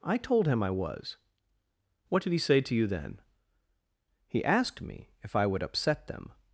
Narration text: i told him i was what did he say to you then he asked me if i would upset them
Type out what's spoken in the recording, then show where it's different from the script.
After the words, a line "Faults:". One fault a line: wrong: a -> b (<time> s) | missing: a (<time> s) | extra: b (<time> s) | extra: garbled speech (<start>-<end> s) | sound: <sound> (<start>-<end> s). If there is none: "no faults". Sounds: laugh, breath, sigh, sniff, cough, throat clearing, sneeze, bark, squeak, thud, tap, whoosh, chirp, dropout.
i told him i was what did he say to you then he asked me if i would upset them
Faults:
no faults